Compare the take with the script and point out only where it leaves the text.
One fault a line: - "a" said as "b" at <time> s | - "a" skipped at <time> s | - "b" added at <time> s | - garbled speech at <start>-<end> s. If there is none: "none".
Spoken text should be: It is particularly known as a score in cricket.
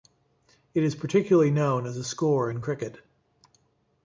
none